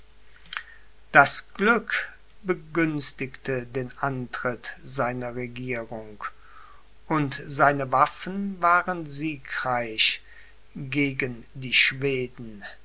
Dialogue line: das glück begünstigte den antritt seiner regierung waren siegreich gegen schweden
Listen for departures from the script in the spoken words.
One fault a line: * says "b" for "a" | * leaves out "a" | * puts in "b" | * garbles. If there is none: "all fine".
* puts in "und seine waffen"
* puts in "die"